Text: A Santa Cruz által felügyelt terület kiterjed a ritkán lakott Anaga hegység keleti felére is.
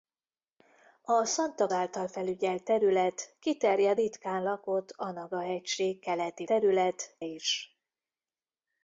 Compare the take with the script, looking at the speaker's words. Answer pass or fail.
fail